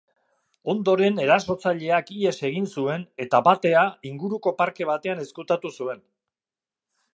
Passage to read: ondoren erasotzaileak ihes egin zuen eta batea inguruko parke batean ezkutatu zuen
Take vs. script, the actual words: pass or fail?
pass